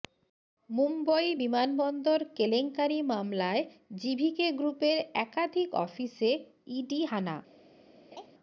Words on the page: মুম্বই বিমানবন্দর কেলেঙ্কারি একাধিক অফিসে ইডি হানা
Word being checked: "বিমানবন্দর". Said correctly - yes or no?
yes